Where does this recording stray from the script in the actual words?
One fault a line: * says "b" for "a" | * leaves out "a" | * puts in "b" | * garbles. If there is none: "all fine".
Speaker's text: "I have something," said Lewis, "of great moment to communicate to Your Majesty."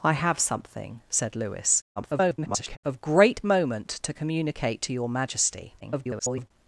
* garbles
* garbles